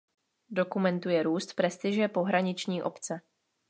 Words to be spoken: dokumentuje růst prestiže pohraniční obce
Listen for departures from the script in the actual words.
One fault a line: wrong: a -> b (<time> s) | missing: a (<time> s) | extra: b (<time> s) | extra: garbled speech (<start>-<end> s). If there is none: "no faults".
no faults